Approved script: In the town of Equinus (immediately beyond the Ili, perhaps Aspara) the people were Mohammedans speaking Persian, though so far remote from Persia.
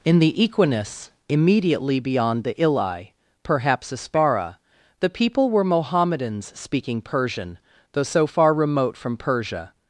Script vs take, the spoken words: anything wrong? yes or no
yes